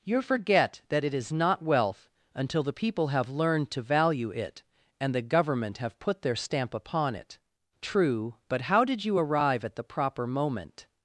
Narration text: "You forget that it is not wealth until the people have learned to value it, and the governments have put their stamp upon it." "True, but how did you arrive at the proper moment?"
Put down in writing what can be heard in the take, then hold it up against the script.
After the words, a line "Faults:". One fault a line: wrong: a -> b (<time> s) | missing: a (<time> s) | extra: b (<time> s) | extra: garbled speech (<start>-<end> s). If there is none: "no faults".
"You forget that it is not wealth until the people have learned to value it, and the government have put their stamp upon it." "True, but how did you arrive at the proper moment?"
Faults:
wrong: governments -> government (5.2 s)